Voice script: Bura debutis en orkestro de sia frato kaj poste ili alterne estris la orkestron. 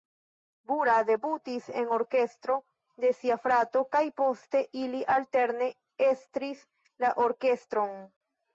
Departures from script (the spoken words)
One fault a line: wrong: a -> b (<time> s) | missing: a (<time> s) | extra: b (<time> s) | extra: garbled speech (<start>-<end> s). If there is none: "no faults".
no faults